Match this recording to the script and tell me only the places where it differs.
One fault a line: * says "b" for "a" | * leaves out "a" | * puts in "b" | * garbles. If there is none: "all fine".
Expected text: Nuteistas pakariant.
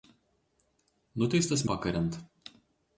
all fine